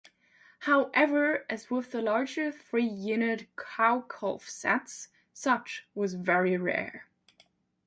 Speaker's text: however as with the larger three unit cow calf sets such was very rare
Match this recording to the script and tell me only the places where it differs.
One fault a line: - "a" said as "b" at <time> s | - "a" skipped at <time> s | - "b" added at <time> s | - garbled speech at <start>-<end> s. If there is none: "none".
none